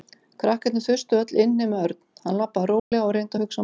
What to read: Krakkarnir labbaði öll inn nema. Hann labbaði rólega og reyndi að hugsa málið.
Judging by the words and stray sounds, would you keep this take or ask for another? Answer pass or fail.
fail